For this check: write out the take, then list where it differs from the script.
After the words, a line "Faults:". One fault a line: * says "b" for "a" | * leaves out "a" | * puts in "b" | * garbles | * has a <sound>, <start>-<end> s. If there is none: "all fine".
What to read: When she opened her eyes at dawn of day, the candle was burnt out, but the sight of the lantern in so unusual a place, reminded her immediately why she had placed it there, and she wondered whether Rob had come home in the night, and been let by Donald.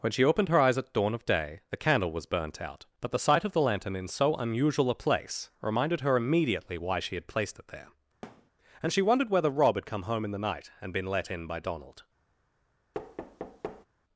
When she opened her eyes at dawn of day, the candle was burnt out, but the sight of the lantern in so unusual a place, reminded her immediately why she had placed it there, and she wondered whether Rob had come home in the night, and been let in by Donald.
Faults:
* has a thud, 8.2-8.5 s
* puts in "in"
* has a thud, 12.9-13.9 s